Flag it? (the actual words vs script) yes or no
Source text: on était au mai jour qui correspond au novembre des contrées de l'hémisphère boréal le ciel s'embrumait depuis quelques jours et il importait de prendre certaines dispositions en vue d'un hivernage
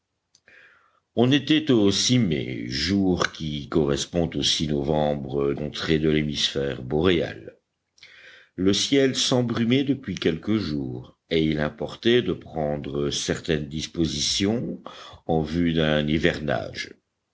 yes